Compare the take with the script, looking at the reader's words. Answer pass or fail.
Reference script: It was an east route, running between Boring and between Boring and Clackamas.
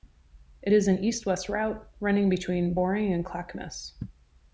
fail